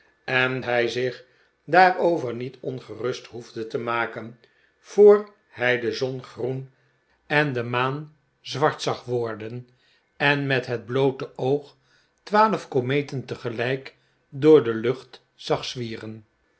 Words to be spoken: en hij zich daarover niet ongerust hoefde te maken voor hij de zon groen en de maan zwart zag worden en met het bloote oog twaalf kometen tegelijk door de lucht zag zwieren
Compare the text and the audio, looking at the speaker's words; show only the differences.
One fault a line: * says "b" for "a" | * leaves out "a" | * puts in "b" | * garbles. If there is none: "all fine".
all fine